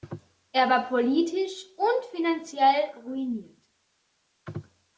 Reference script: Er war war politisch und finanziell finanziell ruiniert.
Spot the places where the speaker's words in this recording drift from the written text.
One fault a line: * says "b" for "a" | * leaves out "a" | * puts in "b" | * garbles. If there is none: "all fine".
* leaves out "war"
* leaves out "finanziell"